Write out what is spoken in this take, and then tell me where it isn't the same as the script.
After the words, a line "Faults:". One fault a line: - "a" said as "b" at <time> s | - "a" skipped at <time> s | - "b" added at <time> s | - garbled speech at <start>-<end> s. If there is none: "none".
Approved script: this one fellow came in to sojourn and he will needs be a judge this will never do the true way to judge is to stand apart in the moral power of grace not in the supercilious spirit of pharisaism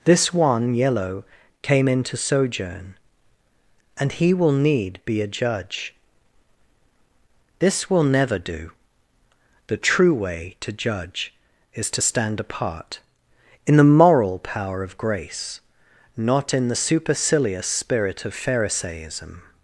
this one yellow came in to sojourn and he will need be a judge this will never do the true way to judge is to stand apart in the moral power of grace not in the supercilious spirit of pharisaism
Faults:
- "fellow" said as "yellow" at 0.7 s
- "needs" said as "need" at 4.5 s